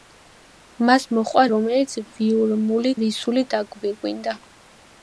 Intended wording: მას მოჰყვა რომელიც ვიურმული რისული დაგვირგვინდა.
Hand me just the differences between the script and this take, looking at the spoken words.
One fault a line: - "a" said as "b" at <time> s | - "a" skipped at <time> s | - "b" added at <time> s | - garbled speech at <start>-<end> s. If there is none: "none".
none